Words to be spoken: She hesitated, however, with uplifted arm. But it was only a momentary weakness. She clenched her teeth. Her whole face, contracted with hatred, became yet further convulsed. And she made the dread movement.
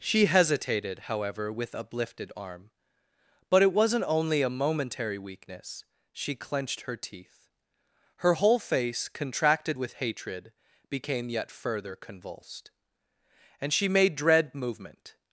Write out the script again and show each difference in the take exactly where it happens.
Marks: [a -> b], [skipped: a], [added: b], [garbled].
She hesitated, however, with uplifted arm. But it [was -> wasn't] only a momentary weakness. She clenched her teeth. Her whole face, contracted with hatred, became yet further convulsed. And she made [skipped: the] dread movement.